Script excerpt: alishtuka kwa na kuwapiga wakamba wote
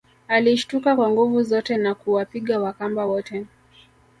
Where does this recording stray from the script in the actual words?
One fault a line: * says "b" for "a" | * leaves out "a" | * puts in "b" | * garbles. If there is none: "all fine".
* puts in "nguvu zote"